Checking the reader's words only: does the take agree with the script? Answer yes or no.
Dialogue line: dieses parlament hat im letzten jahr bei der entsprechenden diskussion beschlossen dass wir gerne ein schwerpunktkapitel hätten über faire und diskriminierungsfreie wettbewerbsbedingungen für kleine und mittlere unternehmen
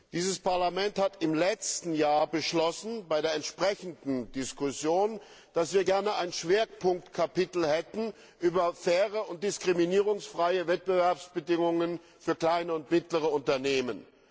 yes